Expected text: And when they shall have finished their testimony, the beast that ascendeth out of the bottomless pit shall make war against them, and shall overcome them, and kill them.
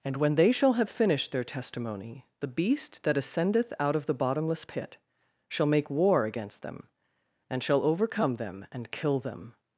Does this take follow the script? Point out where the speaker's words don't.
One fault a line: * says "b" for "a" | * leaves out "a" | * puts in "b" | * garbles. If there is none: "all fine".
all fine